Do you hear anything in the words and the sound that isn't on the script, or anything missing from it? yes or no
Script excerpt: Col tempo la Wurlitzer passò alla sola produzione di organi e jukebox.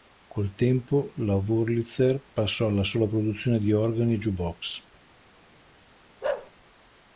yes